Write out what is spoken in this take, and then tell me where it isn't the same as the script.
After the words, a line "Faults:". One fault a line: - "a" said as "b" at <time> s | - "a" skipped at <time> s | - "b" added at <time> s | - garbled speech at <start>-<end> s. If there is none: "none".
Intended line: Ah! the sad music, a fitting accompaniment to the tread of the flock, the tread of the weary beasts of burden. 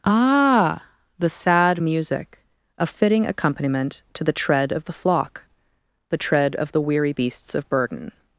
Ah! the sad music, a fitting accompaniment to the tread of the flock, the tread of the weary beasts of burden.
Faults:
none